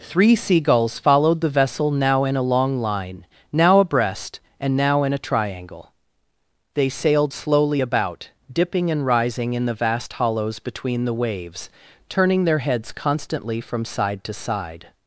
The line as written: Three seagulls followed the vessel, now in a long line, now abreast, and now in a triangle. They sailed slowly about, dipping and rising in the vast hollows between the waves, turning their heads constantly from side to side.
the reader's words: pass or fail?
pass